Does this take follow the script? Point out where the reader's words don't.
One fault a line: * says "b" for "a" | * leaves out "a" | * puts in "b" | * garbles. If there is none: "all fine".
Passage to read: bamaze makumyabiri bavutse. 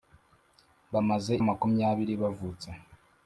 all fine